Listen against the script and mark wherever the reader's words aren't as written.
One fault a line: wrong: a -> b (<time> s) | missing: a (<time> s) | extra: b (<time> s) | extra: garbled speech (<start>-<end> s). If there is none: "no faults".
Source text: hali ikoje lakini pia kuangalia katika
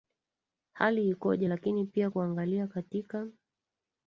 no faults